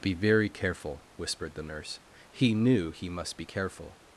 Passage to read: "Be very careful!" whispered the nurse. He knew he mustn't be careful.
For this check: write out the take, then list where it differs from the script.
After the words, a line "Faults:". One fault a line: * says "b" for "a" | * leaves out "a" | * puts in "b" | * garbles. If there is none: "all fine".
"Be very careful!" whispered the nurse. He knew he must be careful.
Faults:
* says "must" for "mustn't"